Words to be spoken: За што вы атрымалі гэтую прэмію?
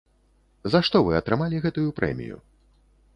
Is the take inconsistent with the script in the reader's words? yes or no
no